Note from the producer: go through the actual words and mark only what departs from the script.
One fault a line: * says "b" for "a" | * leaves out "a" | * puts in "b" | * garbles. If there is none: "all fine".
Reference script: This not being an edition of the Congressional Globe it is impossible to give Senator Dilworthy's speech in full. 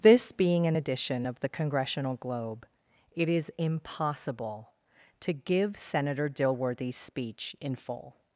* leaves out "not"